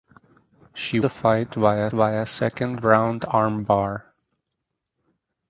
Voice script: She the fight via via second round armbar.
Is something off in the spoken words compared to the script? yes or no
no